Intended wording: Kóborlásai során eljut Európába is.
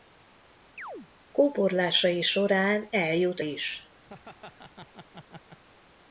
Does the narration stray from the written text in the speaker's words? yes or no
yes